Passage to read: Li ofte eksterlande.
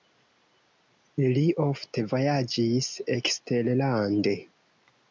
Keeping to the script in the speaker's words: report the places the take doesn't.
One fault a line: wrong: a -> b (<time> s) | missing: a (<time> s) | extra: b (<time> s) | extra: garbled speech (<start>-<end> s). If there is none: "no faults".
extra: vojaĝis (2.1 s)